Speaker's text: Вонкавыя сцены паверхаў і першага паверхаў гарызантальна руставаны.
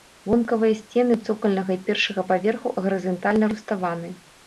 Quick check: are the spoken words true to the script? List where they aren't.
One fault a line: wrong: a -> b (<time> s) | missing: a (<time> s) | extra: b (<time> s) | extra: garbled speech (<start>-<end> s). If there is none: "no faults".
wrong: паверхаў -> цокальнага (1.3 s)